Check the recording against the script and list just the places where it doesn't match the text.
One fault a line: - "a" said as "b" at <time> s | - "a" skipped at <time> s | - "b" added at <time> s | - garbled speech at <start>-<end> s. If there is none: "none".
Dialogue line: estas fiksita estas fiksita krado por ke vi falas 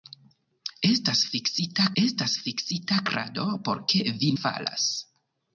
none